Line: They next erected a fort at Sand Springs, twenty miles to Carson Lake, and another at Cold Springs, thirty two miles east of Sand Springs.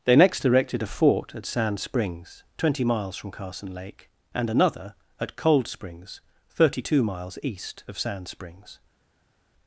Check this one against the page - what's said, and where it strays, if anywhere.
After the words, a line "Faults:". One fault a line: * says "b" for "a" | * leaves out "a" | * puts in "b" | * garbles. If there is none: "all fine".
They next erected a fort at Sand Springs, twenty miles from Carson Lake, and another at Cold Springs, thirty two miles east of Sand Springs.
Faults:
* says "from" for "to"